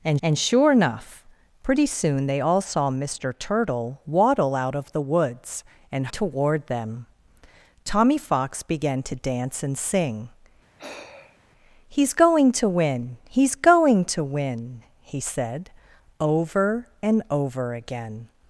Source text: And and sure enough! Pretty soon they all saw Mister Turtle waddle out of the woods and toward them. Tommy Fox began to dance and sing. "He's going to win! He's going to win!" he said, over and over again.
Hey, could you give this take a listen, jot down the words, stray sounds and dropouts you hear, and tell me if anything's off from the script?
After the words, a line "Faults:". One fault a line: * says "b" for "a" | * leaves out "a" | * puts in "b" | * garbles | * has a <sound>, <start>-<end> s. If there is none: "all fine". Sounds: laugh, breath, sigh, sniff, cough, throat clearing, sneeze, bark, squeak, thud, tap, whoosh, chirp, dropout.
And and sure enough! Pretty soon they all saw Mister Turtle waddle out of the woods and toward them. Tommy Fox began to dance and sing. "He's going to win! He's going to win!" he said, over and over again.
Faults:
* has a sigh, 10.8-11.4 s